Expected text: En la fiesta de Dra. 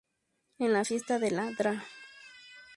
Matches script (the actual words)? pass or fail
fail